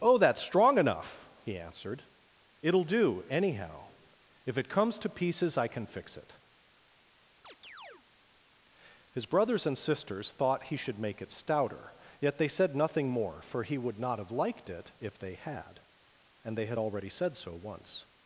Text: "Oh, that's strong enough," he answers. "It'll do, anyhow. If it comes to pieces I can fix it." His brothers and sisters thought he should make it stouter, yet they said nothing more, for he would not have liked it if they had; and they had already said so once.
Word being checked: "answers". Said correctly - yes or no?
no